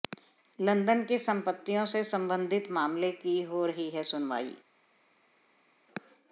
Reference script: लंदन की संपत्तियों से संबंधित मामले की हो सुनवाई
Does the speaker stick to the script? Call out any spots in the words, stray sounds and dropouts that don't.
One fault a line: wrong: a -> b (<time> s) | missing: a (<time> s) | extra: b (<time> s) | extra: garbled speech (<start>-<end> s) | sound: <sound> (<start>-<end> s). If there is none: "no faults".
extra: रही है (3.6 s)